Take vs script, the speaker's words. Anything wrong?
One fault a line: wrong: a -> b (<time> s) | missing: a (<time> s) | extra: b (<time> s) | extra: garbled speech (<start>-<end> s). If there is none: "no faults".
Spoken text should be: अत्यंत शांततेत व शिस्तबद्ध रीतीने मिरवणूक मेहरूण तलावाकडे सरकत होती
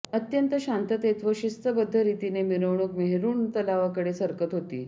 no faults